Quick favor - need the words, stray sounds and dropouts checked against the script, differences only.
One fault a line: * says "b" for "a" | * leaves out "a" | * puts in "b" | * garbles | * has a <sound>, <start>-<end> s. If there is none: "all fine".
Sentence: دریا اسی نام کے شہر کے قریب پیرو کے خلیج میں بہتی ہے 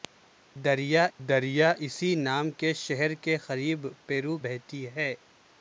* puts in "دریا"
* leaves out "کے خلیج میں"